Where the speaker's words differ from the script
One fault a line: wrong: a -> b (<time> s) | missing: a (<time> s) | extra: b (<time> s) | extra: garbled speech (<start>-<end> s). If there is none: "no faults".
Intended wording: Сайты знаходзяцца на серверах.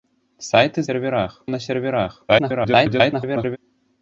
wrong: знаходзяцца -> серверах (0.9 s)
extra: garbled speech (2.3-3.6 s)